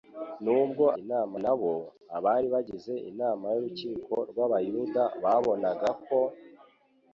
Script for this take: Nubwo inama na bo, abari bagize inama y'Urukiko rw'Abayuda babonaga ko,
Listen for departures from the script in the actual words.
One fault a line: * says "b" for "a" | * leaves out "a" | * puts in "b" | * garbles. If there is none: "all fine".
all fine